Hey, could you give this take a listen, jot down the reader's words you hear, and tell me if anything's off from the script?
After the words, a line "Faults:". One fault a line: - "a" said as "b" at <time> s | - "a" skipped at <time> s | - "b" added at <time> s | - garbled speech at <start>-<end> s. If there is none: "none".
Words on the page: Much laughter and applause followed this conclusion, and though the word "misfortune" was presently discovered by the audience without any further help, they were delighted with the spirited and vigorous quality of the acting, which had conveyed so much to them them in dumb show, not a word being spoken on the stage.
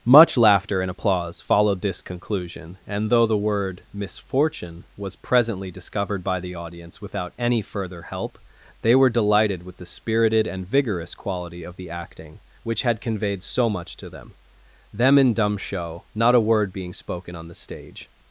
Much laughter and applause followed this conclusion, and though the word "misfortune" was presently discovered by the audience without any further help, they were delighted with the spirited and vigorous quality of the acting, which had conveyed so much to them them in dumb show, not a word being spoken on the stage.
Faults:
none